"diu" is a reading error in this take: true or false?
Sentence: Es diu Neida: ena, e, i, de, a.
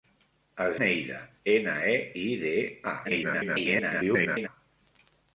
true